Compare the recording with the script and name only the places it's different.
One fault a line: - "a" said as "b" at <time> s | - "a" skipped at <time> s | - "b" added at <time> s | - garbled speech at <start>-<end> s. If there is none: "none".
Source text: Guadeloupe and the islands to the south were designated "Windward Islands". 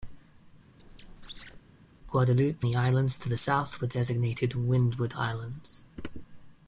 - "and" skipped at 2.7 s